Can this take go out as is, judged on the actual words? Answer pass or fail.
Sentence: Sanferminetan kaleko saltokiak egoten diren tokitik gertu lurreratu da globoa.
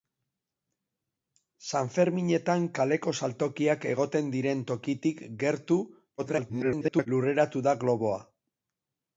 fail